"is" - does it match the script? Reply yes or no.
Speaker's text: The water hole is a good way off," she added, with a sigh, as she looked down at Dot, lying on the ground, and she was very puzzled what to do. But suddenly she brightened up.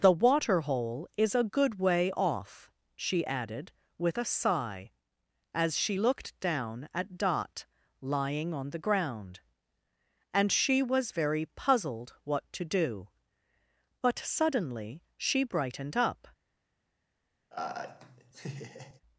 yes